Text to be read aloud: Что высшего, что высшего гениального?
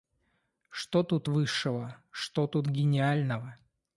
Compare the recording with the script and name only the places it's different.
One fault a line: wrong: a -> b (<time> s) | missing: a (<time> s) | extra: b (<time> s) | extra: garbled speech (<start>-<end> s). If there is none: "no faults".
extra: тут (1.0 s)
wrong: высшего -> тут (2.5 s)